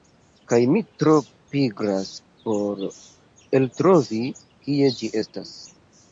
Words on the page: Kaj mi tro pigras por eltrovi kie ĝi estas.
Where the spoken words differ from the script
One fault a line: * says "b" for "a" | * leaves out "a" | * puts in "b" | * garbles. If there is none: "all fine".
all fine